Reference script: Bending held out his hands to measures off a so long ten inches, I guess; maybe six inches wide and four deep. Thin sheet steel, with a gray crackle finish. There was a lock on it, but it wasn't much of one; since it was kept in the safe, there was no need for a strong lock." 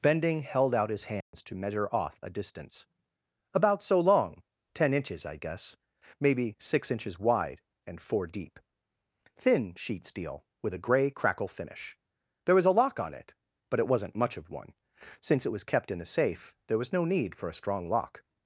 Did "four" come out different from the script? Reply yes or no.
no